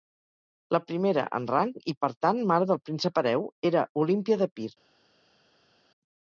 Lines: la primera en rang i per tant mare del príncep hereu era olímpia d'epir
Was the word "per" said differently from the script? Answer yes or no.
no